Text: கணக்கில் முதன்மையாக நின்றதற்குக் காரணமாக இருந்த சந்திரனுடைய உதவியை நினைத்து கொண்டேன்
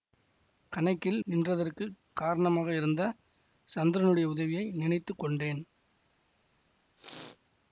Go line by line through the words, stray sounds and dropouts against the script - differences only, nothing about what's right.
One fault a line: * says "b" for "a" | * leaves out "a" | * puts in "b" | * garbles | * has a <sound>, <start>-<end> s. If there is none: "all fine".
* leaves out "முதன்மையாக"
* has a sneeze, 7.0-7.4 s